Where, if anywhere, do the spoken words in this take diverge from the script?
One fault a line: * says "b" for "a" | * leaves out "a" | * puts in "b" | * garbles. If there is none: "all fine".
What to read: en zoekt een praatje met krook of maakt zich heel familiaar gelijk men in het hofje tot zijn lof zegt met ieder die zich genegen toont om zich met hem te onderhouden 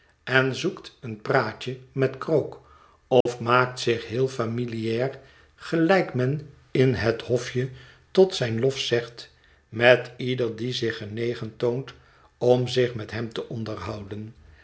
all fine